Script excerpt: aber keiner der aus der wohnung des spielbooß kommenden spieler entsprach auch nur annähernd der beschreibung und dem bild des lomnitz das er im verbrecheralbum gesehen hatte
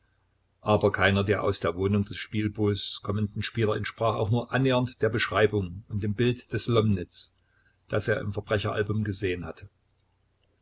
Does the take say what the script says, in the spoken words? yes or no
yes